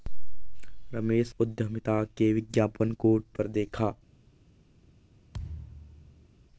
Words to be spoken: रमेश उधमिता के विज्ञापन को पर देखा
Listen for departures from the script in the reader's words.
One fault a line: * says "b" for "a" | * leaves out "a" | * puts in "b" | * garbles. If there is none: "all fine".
all fine